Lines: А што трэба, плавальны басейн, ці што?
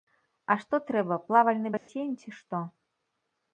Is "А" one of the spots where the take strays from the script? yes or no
no